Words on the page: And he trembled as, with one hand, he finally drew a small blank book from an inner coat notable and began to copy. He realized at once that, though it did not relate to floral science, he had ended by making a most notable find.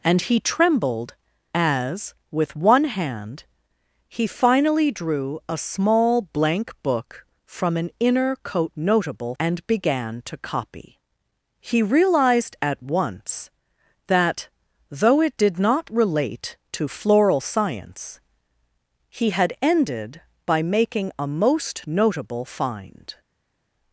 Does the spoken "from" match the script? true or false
true